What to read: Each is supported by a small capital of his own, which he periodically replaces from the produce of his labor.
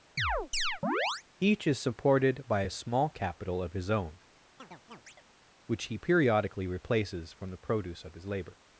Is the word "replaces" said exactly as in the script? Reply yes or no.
yes